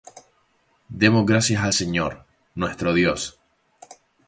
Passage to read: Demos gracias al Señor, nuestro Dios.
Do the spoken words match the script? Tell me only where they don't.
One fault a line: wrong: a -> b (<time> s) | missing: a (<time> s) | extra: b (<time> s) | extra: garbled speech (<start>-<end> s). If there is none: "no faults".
no faults